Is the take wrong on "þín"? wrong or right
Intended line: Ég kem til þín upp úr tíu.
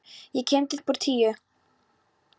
wrong